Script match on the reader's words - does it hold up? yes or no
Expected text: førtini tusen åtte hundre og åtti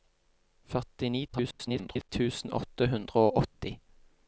no